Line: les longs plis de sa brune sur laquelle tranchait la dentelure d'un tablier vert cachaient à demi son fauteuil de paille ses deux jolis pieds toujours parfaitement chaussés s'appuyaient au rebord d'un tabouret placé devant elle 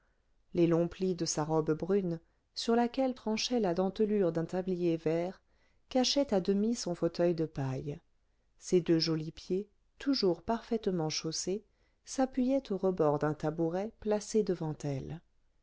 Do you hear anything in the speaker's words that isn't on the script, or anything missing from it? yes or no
yes